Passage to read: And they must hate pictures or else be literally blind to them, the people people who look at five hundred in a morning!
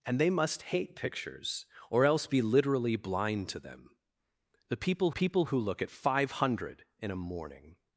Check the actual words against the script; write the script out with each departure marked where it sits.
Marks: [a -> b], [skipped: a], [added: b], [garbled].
And they must hate pictures or else be literally blind to them, the people people who look at five hundred in a morning!